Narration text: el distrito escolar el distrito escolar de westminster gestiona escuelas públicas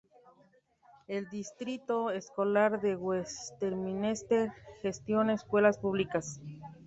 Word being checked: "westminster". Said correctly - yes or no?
yes